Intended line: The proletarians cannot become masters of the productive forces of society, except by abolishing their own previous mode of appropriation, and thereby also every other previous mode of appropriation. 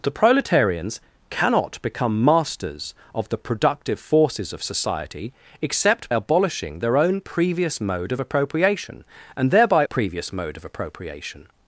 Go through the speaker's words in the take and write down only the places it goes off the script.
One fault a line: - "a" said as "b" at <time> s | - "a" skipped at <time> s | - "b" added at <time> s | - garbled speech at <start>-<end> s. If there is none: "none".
- "by" skipped at 6.1 s
- "also every other" skipped at 9.8 s